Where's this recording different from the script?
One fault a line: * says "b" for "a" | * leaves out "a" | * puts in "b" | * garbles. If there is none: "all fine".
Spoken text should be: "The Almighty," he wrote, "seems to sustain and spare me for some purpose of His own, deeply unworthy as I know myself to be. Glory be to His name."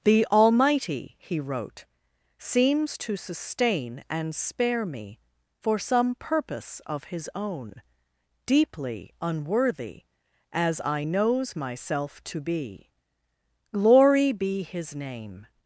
* says "knows" for "know"
* leaves out "to"